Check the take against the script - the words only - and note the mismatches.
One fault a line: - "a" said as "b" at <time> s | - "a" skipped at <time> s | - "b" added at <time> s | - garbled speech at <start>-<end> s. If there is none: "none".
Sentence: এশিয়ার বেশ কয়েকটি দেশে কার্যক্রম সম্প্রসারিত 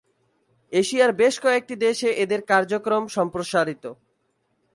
- "এদের" added at 2.2 s